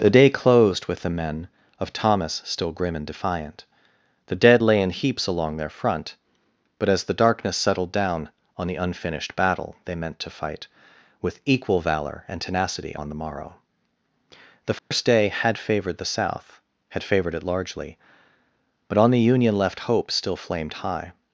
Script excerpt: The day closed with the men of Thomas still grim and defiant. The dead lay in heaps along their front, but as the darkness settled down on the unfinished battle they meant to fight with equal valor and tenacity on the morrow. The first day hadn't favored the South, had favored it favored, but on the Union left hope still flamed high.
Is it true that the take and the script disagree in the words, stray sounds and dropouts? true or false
true